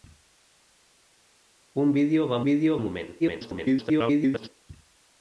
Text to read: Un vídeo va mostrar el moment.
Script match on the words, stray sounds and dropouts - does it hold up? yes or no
no